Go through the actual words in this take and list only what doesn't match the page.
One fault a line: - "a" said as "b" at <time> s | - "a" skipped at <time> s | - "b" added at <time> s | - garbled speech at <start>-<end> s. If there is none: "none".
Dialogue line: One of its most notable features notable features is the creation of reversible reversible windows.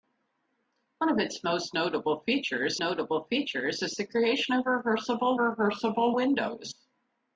none